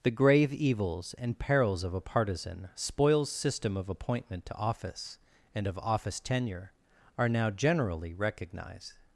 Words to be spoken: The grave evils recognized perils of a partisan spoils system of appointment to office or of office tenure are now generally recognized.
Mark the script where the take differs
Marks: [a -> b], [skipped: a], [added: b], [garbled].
The grave evils [recognized -> and] perils of a partisan spoils system of appointment to office [or -> and] of office tenure are now generally recognized.